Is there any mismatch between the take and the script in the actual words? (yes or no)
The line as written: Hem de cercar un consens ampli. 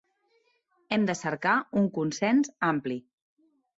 no